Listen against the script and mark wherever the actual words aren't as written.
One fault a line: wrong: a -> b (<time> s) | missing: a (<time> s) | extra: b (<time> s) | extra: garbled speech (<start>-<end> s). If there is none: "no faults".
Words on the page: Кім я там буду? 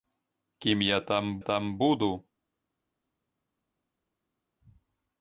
extra: там (1.4 s)